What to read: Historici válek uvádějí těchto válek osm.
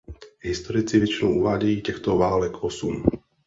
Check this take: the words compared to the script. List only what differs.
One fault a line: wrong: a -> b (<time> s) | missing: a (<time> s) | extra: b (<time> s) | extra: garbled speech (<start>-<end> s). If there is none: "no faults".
wrong: válek -> většinou (1.0 s)